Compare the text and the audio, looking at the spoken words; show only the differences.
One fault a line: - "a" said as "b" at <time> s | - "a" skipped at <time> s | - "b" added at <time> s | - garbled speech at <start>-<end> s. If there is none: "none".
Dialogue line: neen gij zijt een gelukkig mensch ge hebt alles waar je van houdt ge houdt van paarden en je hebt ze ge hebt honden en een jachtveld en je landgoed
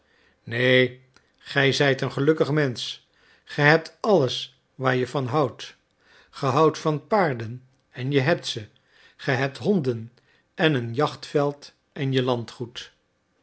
none